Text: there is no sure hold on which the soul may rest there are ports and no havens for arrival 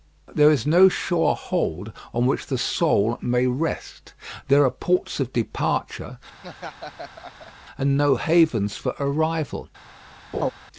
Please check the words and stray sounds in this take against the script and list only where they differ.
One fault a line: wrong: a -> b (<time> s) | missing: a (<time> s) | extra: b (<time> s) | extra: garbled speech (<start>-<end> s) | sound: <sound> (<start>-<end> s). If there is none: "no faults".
extra: of departure (5.2 s)
sound: laugh (6.4-7.5 s)
sound: laugh (10.3-10.5 s)